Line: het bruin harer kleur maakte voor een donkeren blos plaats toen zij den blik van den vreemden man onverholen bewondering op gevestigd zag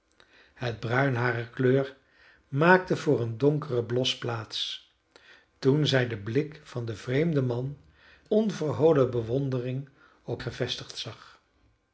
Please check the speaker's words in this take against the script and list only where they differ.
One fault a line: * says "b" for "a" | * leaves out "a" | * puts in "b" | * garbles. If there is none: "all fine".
all fine